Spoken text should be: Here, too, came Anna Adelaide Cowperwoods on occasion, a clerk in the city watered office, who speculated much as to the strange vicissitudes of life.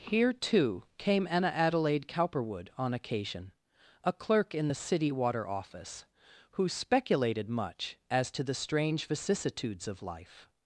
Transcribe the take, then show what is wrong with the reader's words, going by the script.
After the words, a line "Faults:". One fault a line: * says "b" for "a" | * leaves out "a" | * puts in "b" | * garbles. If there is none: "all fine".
Here, too, came Anna Adelaide Cowperwood on occasion, a clerk in the city water office, who speculated much as to the strange vicissitudes of life.
Faults:
* says "Cowperwood" for "Cowperwoods"
* says "water" for "watered"